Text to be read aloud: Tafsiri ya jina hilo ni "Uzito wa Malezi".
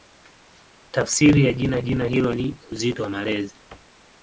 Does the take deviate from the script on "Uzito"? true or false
false